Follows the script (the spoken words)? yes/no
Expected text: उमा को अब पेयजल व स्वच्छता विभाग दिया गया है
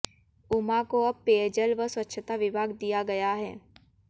yes